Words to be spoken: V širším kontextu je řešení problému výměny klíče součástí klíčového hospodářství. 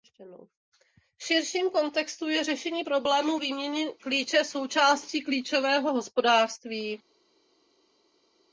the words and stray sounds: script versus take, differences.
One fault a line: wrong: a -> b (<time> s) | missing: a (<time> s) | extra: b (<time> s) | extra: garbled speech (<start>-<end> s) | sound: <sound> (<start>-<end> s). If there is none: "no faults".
no faults